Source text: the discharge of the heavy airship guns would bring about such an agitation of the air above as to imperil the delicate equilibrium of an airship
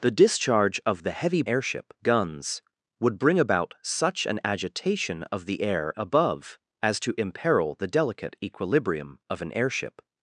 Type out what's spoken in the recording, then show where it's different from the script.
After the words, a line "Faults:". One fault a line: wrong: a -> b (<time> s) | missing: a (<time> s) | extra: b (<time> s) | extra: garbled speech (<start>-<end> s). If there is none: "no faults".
the discharge of the heavy airship guns would bring about such an agitation of the air above as to imperil the delicate equilibrium of an airship
Faults:
no faults